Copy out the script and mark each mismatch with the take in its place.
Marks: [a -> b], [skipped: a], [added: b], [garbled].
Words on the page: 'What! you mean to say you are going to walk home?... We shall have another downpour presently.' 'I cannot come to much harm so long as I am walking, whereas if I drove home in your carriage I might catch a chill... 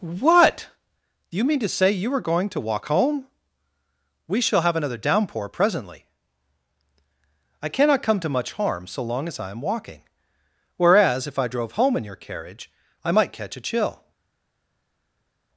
'What! [added: do] you mean to say you are going to walk home?... We shall have another downpour presently.' 'I cannot come to much harm so long as I am walking, whereas if I drove home in your carriage I might catch a chill...